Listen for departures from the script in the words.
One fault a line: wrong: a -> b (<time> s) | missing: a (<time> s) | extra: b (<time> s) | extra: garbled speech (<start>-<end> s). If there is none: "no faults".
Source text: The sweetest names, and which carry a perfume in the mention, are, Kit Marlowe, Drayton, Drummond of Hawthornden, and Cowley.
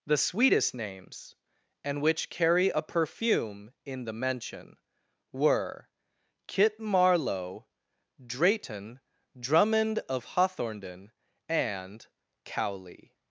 wrong: are -> were (5.3 s)